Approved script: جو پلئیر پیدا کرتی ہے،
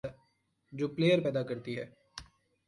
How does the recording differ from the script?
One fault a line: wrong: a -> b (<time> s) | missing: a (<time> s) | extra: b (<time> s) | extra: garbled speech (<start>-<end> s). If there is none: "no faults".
no faults